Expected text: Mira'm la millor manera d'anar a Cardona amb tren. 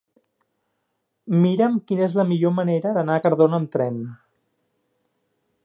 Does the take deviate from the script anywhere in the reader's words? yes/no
yes